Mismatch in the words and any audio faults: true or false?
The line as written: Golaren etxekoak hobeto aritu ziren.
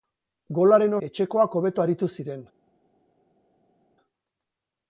false